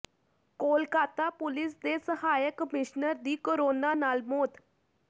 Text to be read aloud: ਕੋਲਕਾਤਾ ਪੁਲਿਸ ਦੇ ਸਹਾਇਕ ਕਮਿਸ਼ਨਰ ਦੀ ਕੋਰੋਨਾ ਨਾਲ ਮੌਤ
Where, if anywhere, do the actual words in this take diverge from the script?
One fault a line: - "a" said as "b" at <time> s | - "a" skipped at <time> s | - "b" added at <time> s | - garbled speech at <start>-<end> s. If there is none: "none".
none